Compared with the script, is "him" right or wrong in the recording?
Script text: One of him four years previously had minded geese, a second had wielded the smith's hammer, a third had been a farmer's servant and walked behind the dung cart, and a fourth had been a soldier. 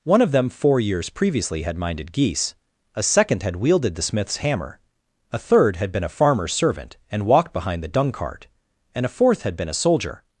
wrong